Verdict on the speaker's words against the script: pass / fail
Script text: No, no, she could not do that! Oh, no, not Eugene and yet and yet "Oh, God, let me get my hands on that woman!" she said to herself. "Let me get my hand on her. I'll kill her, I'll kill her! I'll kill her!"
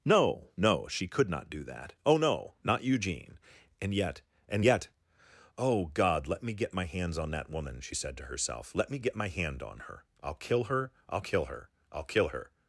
pass